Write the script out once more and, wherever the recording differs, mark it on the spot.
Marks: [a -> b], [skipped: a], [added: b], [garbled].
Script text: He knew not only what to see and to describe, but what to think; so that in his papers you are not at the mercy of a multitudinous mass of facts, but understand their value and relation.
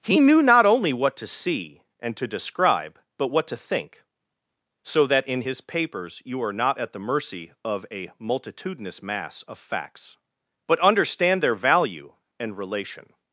He knew not only what to see and to describe, but what to think; so that in his papers you are not at the mercy of a multitudinous mass of facts, but understand their value and relation.